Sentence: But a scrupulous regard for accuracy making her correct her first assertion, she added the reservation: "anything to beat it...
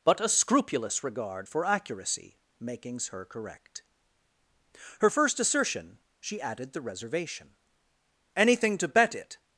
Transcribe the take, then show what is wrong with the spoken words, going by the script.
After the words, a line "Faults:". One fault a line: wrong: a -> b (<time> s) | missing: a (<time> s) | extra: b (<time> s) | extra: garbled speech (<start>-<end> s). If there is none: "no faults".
But a scrupulous regard for accuracy makings her correct her first assertion, she added the reservation: "anything to bet it...
Faults:
wrong: making -> makings (2.6 s)
wrong: beat -> bet (8.9 s)